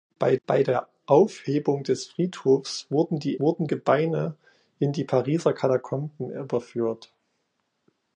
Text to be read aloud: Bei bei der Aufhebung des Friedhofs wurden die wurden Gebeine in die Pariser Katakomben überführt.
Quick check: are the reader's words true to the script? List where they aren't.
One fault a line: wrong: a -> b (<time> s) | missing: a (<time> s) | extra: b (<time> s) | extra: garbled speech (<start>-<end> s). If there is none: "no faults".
no faults